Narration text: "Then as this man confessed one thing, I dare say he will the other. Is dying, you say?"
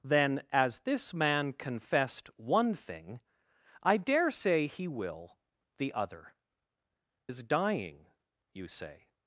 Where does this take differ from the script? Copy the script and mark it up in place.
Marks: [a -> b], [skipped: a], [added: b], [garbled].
"Then as this man confessed one thing, I dare say he will the other. Is dying, you say?"